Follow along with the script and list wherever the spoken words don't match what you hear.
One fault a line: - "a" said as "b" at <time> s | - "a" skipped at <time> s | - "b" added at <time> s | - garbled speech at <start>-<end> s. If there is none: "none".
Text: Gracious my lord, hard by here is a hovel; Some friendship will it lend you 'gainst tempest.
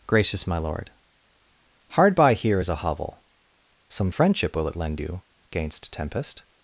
none